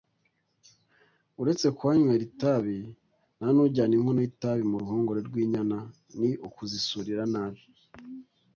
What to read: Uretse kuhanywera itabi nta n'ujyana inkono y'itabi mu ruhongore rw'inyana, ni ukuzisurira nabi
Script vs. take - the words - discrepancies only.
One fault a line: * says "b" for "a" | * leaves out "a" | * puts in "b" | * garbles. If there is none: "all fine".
all fine